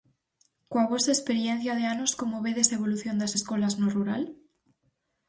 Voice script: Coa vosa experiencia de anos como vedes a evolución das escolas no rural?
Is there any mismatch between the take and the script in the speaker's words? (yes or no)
no